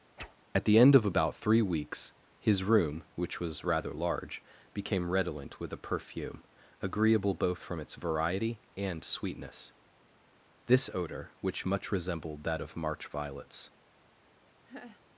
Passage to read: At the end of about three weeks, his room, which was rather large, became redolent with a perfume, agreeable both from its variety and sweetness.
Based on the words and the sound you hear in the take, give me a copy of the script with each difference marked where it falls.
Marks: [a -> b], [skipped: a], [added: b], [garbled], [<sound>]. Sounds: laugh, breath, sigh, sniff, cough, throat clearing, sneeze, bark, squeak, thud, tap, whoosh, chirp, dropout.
[whoosh] At the end of about three weeks, his room, which was rather large, became redolent with a perfume, agreeable both from its variety and sweetness. [added: This odor which much resembled that of March violets] [laugh]